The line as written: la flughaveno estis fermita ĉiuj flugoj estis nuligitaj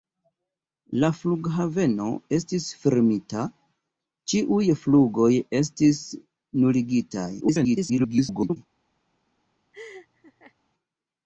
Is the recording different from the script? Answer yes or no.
yes